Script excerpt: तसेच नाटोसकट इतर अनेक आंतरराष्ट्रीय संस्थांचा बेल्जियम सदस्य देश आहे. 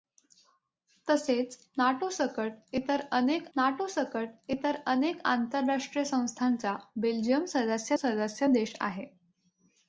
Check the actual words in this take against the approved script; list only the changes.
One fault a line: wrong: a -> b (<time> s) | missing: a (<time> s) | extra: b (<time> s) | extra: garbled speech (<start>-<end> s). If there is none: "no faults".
extra: नाटोसकट इतर अनेक (3.6 s)
extra: सदस्य (8.0 s)